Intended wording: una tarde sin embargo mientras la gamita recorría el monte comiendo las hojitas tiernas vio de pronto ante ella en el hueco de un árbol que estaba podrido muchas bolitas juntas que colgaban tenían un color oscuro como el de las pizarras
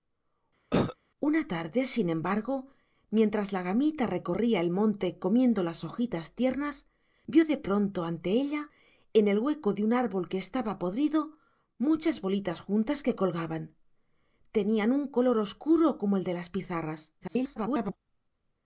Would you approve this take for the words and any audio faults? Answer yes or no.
no